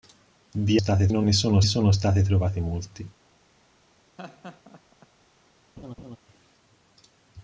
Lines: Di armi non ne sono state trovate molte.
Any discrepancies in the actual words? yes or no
yes